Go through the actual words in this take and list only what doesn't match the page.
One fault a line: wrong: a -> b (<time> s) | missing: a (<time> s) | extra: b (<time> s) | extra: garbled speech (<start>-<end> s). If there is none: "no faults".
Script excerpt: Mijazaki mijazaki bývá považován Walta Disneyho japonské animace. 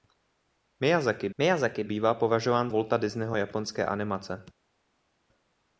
no faults